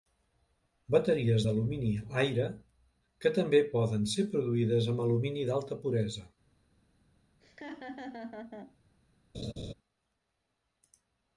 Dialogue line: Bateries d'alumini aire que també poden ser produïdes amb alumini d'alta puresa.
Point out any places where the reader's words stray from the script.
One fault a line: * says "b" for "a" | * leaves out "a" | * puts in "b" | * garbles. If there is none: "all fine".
all fine